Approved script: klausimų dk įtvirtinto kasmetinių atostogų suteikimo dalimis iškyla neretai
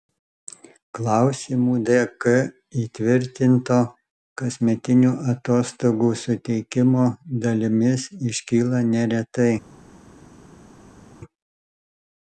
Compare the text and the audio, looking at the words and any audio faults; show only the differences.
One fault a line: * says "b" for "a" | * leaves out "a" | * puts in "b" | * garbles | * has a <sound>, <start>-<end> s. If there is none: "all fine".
all fine